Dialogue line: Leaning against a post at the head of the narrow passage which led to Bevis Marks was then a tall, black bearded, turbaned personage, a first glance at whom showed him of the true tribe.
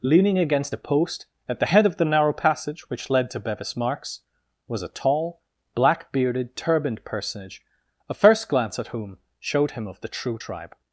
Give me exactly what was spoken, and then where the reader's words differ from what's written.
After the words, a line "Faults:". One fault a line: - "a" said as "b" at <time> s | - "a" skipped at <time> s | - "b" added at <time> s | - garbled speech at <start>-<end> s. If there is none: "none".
Leaning against a post at the head of the narrow passage which led to Bevis Marks was a tall, black bearded, turbaned personage, a first glance at whom showed him of the true tribe.
Faults:
- "then" skipped at 4.8 s